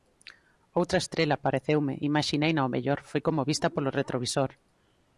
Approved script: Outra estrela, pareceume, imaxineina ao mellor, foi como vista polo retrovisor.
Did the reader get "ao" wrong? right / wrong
right